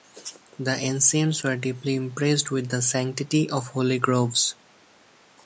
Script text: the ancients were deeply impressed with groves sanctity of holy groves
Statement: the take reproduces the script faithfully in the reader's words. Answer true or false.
false